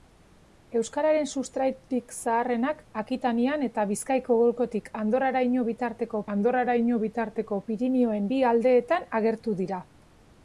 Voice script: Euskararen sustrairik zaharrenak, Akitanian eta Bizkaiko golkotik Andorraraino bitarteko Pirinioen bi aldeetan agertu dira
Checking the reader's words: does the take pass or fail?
fail